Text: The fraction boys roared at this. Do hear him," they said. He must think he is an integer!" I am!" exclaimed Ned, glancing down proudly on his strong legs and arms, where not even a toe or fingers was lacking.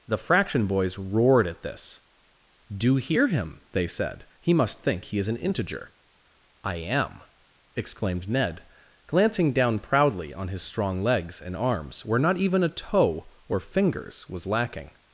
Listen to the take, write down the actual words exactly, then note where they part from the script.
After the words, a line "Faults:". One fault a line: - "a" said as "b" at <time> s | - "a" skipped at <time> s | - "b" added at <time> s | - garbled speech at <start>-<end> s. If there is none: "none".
The fraction boys roared at this. Do hear him," they said. He must think he is an integer!" I am!" exclaimed Ned, glancing down proudly on his strong legs and arms, where not even a toe or fingers was lacking.
Faults:
none